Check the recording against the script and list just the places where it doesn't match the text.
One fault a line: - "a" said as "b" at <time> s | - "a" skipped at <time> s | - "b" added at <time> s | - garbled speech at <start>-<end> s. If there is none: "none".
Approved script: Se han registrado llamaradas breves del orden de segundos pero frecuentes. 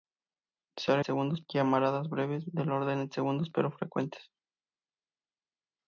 - "registrado" said as "segundos" at 1.0 s